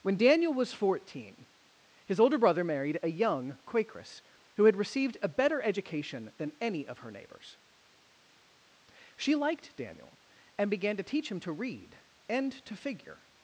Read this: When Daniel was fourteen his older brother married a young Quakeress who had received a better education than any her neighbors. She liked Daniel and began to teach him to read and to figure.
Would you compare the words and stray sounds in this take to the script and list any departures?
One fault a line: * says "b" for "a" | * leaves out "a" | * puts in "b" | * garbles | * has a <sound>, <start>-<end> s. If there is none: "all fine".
* puts in "of"